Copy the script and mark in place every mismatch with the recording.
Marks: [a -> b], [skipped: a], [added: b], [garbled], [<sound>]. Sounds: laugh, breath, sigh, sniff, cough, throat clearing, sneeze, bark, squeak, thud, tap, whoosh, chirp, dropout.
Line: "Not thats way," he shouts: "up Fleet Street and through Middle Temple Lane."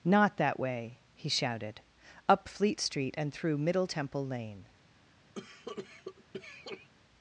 "Not [thats -> that] way," he [shouts: -> shouted] "up Fleet Street and through Middle Temple Lane." [cough]